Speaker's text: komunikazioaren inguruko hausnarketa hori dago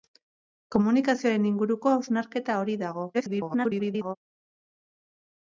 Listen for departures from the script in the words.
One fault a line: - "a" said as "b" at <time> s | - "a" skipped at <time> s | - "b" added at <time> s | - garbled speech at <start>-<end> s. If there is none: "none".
- garbled speech at 3.1-4.2 s